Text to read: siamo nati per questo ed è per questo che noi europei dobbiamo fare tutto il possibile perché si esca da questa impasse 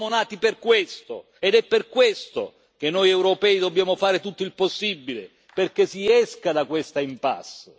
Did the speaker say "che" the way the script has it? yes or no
yes